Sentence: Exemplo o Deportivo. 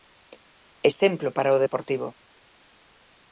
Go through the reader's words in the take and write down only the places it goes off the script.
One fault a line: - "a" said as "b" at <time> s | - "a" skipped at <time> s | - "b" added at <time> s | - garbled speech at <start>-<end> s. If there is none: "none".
- "para" added at 1.4 s